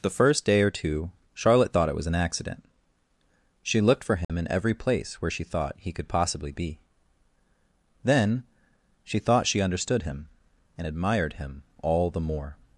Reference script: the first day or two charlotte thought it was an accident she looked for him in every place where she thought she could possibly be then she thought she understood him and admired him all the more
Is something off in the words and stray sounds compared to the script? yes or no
yes